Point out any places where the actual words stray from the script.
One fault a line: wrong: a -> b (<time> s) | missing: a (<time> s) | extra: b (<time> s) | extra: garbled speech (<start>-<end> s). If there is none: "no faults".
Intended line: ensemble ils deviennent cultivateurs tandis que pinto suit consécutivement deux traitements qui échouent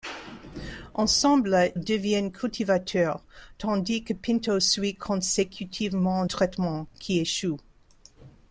missing: ils (1.8 s)
missing: deux (6.2 s)